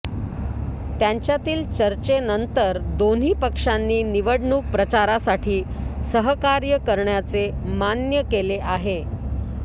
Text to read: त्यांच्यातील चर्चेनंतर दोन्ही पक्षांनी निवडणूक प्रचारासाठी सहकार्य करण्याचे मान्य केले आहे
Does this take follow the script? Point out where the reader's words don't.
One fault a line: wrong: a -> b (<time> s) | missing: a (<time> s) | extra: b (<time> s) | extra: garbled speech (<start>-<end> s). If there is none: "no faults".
no faults